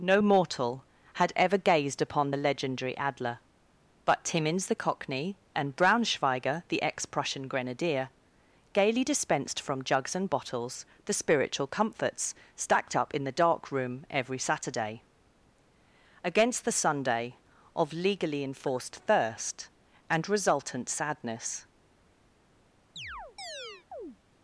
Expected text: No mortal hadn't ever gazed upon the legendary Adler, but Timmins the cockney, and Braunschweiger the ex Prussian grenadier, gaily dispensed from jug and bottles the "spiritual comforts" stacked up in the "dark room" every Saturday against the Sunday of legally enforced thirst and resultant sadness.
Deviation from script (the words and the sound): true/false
true